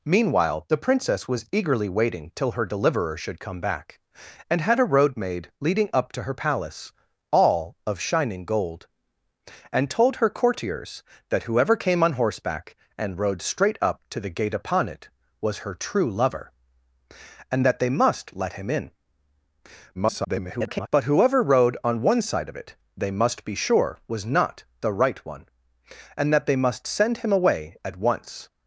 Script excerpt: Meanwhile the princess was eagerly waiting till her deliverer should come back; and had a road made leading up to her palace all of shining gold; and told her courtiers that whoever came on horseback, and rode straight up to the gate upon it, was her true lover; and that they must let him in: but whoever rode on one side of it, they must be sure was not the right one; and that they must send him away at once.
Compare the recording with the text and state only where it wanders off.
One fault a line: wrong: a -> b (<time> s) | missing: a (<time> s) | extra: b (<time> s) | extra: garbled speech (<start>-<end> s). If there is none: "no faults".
extra: garbled speech (19.9-20.9 s)